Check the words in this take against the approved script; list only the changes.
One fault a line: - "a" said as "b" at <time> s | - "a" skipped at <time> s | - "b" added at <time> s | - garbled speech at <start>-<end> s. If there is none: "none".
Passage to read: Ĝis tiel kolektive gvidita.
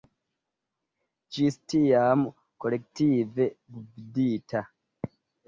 - "tiel" said as "tiam" at 1.7 s